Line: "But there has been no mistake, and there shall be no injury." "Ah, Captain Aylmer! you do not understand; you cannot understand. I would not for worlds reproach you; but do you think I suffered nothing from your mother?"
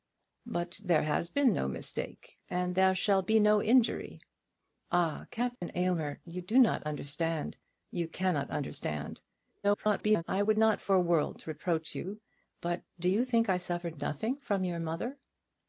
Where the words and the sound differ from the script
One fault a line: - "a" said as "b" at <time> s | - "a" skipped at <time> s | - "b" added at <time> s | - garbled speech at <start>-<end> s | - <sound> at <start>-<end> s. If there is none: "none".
- dropout at 5.6-5.6 s
- garbled speech at 9.6-10.2 s